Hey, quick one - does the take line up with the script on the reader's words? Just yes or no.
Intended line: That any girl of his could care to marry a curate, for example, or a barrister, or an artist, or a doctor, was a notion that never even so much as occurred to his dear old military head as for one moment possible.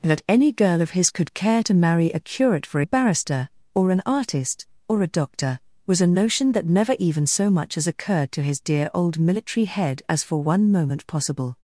no